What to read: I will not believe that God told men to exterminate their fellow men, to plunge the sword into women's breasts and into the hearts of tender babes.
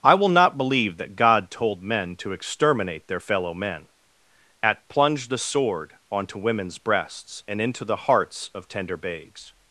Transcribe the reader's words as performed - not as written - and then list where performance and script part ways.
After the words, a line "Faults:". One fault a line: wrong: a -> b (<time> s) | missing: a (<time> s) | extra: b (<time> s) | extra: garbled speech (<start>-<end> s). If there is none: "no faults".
I will not believe that God told men to exterminate their fellow men, at plunge the sword onto women's breasts and into the hearts of tender babes.
Faults:
wrong: to -> at (4.6 s)
wrong: into -> onto (6.1 s)